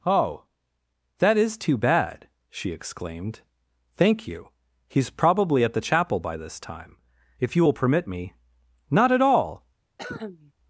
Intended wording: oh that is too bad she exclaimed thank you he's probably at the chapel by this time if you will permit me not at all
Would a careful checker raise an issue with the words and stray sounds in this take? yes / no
yes